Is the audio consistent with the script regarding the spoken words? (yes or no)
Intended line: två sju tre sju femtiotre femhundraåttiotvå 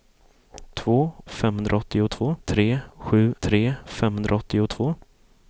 no